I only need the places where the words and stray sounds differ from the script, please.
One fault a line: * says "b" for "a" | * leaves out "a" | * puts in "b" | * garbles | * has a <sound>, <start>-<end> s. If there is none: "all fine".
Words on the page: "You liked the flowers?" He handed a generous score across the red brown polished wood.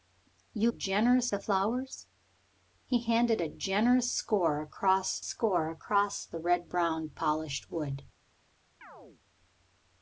* says "generous" for "liked"
* puts in "score across"
* has a chirp, 8.8-9.2 s